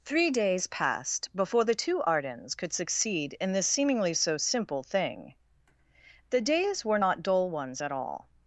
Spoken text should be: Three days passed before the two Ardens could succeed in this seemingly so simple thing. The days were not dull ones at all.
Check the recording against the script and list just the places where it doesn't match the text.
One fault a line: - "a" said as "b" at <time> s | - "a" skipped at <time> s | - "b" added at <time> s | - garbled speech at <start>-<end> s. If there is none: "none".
none